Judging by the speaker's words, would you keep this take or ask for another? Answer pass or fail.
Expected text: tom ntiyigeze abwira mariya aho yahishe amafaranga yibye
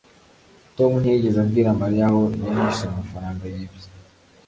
pass